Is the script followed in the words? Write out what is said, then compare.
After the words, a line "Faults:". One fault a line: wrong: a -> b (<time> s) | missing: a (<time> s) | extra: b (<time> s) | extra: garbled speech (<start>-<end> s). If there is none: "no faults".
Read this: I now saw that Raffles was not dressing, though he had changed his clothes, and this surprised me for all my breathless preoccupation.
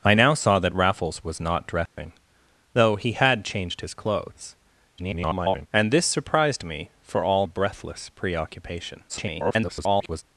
I now saw that Raffles was not dressing, though he had changed his clothes, [garbled] and this surprised me for all breathless preoccupation. [garbled]
Faults:
extra: garbled speech (5.0-5.7 s)
missing: my (7.5 s)
extra: garbled speech (9.1-10.2 s)